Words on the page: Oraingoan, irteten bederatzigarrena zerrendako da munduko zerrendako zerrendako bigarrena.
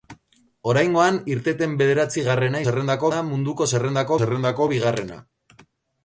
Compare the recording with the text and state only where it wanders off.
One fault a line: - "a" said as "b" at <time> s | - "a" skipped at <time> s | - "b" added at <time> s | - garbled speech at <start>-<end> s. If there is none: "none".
none